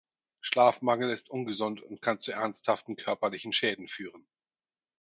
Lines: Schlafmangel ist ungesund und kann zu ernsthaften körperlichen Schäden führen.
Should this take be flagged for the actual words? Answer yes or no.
no